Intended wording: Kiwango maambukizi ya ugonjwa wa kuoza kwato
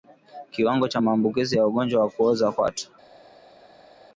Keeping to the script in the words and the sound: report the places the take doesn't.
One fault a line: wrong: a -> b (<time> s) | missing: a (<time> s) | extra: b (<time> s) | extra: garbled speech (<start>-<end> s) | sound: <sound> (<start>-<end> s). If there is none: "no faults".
extra: cha (0.9 s)